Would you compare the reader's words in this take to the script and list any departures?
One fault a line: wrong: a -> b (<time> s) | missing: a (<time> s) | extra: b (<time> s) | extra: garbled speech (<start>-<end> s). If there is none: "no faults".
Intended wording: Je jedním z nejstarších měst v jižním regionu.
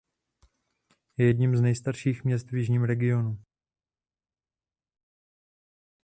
no faults